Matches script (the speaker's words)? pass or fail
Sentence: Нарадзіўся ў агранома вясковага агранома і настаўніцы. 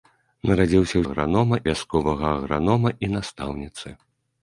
pass